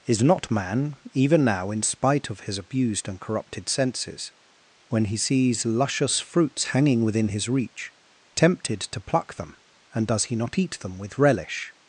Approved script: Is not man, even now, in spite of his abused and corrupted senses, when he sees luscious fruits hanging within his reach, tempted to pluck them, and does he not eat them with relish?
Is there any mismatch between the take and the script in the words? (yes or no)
no